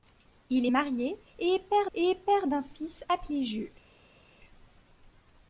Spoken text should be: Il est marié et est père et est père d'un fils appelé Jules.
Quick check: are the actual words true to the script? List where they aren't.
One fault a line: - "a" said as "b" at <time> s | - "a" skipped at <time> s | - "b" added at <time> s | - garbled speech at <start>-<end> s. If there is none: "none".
none